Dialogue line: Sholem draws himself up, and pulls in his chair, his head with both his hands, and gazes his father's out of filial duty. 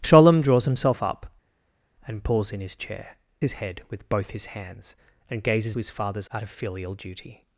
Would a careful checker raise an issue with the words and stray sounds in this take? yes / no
no